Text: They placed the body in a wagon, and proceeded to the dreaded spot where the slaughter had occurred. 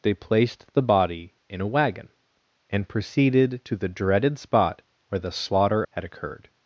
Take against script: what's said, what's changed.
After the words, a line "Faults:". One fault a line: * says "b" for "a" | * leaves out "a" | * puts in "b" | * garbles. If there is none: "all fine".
They placed the body in a wagon, and proceeded to the dreaded spot where the slaughter had occurred.
Faults:
all fine